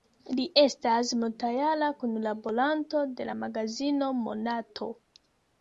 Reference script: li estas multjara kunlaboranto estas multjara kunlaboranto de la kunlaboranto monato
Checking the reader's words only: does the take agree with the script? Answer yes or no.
no